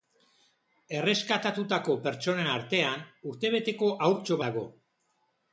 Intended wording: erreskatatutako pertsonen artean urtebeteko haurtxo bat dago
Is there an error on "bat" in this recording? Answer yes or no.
yes